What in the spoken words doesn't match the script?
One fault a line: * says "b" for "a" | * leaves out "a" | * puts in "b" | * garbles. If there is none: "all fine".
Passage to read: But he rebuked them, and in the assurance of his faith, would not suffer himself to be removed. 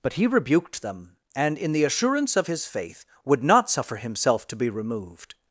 all fine